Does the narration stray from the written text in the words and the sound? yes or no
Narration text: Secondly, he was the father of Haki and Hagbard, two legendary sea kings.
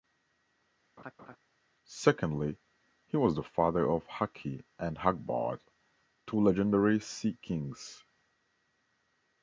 yes